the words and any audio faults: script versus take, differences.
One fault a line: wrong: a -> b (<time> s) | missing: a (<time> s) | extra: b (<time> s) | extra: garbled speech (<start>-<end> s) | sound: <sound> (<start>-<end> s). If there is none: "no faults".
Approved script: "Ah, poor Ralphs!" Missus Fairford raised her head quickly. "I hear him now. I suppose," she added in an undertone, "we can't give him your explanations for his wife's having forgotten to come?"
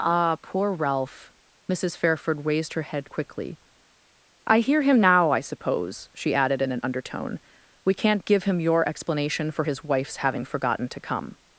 wrong: Ralphs -> Ralph (0.7 s)
wrong: explanations -> explanation (8.9 s)